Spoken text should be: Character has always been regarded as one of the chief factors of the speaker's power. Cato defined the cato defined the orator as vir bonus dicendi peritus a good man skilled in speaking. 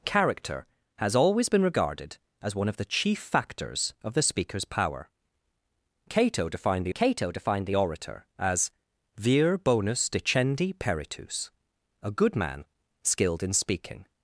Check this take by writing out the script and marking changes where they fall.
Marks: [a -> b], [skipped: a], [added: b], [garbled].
Character has always been regarded as one of the chief factors of the speaker's power. Cato defined the cato defined the orator as vir bonus dicendi peritus a good man skilled in speaking.